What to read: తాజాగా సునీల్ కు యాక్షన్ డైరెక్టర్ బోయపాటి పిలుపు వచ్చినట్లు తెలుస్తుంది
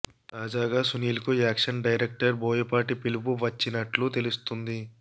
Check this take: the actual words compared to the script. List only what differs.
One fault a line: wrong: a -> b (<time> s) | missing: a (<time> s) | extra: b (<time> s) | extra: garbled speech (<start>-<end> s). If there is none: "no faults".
no faults